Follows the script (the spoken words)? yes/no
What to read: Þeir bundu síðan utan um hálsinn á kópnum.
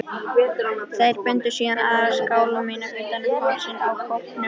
no